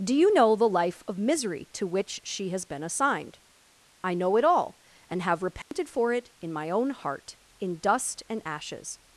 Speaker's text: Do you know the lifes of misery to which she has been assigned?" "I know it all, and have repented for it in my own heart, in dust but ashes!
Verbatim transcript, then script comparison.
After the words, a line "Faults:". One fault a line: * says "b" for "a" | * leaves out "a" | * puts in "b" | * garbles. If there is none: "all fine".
Do you know the life of misery to which she has been assigned?" "I know it all, and have repented for it in my own heart, in dust and ashes!
Faults:
* says "life" for "lifes"
* says "and" for "but"